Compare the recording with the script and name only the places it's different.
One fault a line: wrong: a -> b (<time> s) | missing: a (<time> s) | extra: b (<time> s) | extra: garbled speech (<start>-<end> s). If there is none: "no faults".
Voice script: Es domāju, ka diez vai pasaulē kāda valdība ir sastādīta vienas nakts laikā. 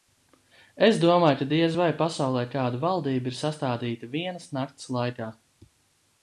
no faults